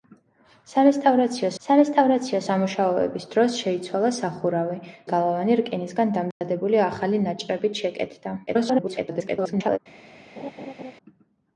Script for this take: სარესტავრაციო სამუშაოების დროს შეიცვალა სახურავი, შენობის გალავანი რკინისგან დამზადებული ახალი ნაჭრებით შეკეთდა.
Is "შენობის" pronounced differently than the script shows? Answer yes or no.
yes